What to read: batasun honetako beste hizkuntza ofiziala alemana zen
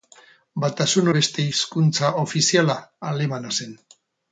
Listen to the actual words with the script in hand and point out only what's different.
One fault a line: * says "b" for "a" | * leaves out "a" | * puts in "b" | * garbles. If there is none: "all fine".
* leaves out "honetako"